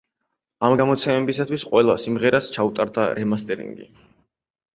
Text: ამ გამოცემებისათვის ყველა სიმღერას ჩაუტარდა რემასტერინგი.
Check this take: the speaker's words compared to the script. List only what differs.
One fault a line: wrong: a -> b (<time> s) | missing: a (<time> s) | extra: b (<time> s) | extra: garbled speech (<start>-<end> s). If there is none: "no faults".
no faults